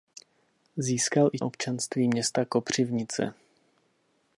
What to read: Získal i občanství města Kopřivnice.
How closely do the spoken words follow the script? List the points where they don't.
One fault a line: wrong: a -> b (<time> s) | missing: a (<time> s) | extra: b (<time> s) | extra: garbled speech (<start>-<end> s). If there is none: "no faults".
no faults